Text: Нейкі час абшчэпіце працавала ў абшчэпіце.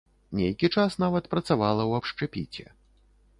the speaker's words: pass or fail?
fail